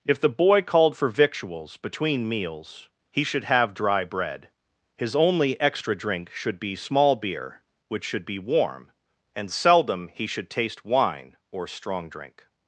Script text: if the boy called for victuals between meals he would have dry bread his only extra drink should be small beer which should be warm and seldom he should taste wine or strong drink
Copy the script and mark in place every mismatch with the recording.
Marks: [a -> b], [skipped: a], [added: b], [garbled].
if the boy called for victuals between meals he [would -> should] have dry bread his only extra drink should be small beer which should be warm and seldom he should taste wine or strong drink